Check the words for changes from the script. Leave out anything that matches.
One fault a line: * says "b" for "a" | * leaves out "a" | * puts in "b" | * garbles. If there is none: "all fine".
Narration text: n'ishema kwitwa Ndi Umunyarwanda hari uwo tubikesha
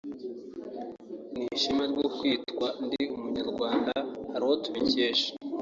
* puts in "ryo"